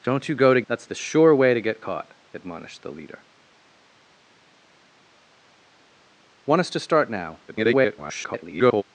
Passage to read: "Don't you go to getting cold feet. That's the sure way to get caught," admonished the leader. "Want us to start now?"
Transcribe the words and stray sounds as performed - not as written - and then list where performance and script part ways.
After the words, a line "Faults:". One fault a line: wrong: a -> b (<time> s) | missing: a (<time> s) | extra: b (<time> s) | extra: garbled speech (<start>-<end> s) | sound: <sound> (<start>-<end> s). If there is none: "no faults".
"Don't you go to. That's the sure way to get caught," admonished the leader. "Want us to start now?" [garbled]
Faults:
missing: getting cold feet (0.6 s)
extra: garbled speech (7.5-8.8 s)